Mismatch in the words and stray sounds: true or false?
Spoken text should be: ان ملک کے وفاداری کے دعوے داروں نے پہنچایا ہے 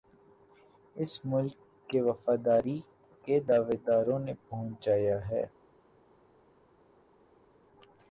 true